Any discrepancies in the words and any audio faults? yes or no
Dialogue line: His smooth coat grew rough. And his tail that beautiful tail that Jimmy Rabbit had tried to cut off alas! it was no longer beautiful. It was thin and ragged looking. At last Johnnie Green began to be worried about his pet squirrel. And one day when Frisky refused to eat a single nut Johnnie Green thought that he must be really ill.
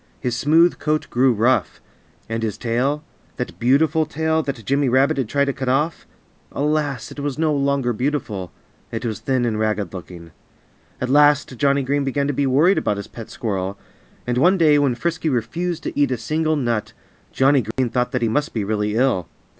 yes